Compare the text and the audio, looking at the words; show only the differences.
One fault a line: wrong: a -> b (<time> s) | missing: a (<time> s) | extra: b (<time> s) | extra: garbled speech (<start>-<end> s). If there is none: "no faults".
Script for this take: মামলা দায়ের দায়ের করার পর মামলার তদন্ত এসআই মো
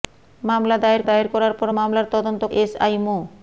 no faults